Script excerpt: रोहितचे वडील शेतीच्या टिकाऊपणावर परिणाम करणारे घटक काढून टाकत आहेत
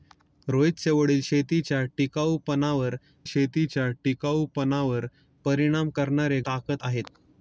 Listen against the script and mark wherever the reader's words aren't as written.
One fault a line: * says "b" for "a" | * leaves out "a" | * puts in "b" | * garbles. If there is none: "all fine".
* puts in "शेतीच्या टिकाऊपणावर"
* leaves out "घटक काढून"